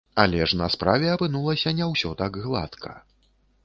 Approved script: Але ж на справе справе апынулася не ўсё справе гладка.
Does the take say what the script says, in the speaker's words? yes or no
no